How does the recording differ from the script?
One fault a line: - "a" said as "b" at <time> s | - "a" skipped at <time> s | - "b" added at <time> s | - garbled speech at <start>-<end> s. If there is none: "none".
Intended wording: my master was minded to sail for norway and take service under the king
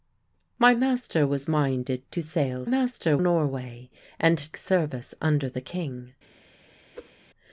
- "for" said as "master" at 2.6 s
- "take" skipped at 4.5 s